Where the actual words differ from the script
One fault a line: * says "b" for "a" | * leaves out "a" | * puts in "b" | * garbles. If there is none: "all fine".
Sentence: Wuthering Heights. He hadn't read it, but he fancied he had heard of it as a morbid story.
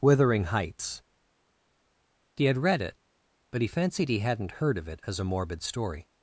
* says "had" for "hadn't"
* says "hadn't" for "had"